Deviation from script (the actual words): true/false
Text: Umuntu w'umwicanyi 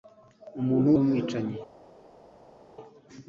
false